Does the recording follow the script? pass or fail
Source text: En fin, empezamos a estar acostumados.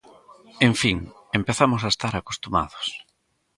pass